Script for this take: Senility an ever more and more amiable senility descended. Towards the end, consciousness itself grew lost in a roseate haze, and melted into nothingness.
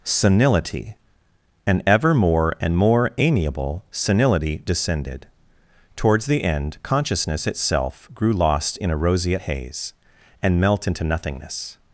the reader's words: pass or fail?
fail